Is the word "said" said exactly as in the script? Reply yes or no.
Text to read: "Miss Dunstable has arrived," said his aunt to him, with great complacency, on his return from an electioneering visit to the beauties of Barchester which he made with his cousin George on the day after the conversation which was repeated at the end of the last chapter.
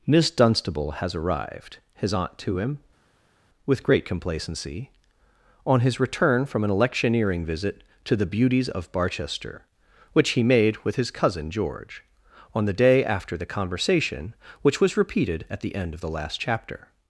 no